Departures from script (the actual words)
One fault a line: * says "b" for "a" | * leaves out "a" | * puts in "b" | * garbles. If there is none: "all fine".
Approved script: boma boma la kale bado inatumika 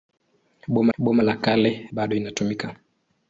all fine